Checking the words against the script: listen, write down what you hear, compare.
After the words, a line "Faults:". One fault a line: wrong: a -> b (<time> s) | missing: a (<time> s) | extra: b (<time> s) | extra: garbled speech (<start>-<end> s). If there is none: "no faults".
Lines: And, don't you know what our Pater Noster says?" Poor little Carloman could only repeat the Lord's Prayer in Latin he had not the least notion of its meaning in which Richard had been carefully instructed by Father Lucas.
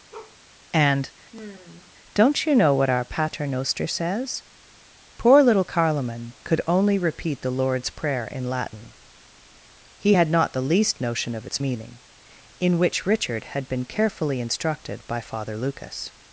And, don't you know what our Pater Noster says?" Poor little Carloman could only repeat the Lord's Prayer in Latin he had not the least notion of its meaning in which Richard had been carefully instructed by Father Lucas.
Faults:
no faults